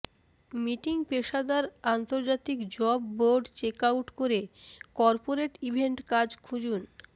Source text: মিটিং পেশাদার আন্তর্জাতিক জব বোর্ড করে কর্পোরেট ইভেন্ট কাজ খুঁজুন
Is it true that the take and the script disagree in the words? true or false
true